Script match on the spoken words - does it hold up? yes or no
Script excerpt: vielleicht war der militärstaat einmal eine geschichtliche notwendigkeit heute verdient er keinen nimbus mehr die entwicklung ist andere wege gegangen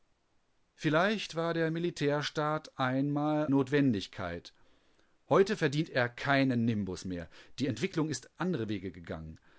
no